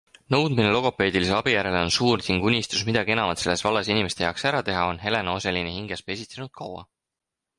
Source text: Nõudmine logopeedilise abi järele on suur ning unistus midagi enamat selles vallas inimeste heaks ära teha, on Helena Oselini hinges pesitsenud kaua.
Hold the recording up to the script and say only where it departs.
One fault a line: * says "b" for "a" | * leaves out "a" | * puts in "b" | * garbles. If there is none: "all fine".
all fine